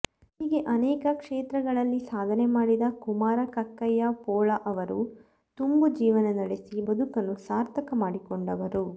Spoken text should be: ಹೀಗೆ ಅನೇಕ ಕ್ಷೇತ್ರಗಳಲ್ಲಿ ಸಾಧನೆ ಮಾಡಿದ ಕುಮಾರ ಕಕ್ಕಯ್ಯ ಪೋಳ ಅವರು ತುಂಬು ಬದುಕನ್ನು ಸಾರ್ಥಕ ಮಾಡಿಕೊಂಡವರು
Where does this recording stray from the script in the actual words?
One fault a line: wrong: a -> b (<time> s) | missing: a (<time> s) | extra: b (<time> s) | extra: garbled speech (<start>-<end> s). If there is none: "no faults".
extra: ಜೀವನ ನಡೆಸಿ (6.0 s)